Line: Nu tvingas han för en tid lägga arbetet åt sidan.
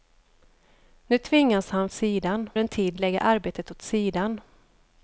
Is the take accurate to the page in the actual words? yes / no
no